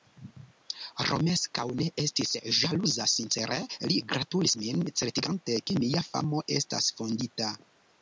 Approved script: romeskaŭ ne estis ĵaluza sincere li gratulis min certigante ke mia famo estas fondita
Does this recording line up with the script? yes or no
yes